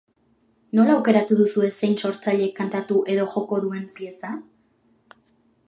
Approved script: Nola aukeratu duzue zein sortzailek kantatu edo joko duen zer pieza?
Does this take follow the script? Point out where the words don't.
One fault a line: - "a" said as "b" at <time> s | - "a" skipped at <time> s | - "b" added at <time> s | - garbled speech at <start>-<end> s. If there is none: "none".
- "zer" skipped at 3.9 s